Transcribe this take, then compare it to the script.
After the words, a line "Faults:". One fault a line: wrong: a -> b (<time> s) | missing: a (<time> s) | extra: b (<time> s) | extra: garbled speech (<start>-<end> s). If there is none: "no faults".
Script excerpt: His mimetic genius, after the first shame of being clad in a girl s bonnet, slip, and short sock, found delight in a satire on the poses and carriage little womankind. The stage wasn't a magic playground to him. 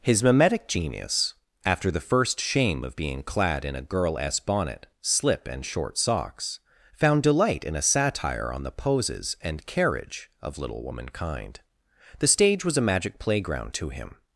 His mimetic genius, after the first shame of being clad in a girl s bonnet, slip, and short socks, found delight in a satire on the poses and carriage of little womankind. The stage was a magic playground to him.
Faults:
wrong: sock -> socks (6.0 s)
extra: of (10.4 s)
wrong: wasn't -> was (12.6 s)